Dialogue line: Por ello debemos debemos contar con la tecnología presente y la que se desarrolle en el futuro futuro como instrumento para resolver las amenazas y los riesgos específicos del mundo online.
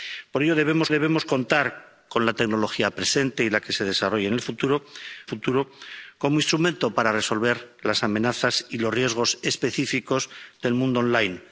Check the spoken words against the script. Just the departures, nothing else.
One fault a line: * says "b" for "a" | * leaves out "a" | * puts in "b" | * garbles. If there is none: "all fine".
all fine